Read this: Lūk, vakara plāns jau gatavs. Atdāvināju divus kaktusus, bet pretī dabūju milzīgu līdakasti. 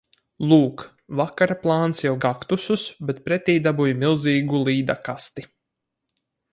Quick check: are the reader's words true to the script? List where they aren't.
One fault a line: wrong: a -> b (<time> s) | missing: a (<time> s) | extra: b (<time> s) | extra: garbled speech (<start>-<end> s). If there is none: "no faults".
missing: gatavs Atdāvināju divus (2.1 s)